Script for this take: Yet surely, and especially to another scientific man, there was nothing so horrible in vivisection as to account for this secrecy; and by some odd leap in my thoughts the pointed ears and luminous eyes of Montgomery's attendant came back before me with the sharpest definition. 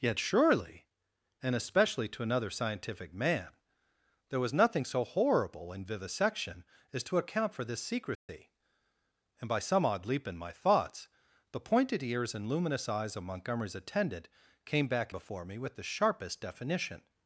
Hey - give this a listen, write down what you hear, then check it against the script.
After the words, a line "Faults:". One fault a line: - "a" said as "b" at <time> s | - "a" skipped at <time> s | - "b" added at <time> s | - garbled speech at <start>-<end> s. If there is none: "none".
Yet surely, and especially to another scientific man, there was nothing so horrible in vivisection as to account for this secrecy; and by some odd leap in my thoughts the pointed ears and luminous eyes of Montgomery's attendant came back before me with the sharpest definition.
Faults:
none